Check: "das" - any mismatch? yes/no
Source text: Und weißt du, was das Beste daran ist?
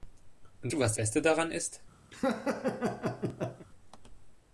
yes